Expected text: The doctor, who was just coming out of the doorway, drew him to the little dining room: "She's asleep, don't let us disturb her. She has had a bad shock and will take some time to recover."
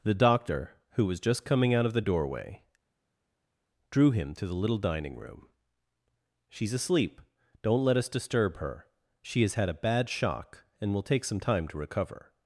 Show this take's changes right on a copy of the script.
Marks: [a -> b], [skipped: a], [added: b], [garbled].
The doctor, who was just coming out of the doorway, drew him to the little dining room: "She's asleep, don't let us disturb her. She has had a bad shock and will take some time to recover."